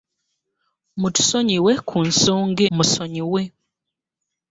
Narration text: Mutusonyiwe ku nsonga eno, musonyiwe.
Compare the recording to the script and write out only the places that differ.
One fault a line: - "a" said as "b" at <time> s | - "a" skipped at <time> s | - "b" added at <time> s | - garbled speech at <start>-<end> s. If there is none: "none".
- "eno" skipped at 2.6 s